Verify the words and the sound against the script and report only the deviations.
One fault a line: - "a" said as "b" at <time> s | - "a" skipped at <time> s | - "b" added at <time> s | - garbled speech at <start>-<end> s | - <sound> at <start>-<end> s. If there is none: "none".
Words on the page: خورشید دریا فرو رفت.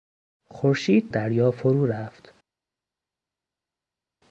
none